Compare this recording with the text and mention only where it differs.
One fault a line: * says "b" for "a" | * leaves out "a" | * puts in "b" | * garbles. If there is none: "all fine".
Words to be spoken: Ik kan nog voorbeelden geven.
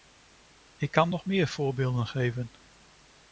* puts in "meer"